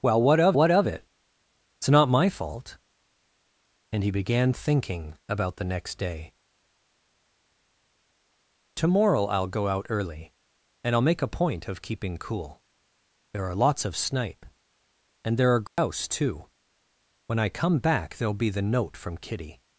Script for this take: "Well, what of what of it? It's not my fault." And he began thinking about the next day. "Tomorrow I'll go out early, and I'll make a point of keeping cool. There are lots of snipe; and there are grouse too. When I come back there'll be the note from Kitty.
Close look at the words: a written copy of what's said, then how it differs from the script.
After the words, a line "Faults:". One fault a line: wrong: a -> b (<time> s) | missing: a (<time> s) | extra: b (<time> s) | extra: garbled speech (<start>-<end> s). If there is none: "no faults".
"Well, what of what of it? It's not my fault." And he began thinking about the next day. "Tomorrow I'll go out early, and I'll make a point of keeping cool. There are lots of snipe; and there are grouse too. When I come back there'll be the note from Kitty.
Faults:
no faults